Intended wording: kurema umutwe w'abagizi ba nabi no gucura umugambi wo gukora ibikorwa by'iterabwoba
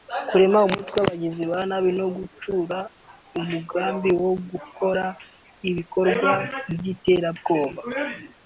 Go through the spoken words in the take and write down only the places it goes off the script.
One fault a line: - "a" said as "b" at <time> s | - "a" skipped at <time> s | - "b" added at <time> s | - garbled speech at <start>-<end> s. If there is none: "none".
none